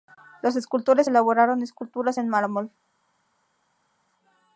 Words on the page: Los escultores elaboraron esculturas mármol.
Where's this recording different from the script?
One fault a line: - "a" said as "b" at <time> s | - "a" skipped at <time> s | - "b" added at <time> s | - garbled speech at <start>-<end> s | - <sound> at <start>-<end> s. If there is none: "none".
- "en" added at 2.2 s